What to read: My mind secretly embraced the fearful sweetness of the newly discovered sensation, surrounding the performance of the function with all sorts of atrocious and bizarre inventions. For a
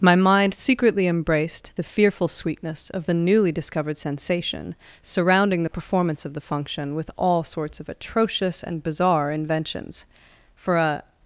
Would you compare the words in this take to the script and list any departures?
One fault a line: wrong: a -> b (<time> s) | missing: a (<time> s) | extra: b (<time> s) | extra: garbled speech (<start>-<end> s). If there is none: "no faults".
no faults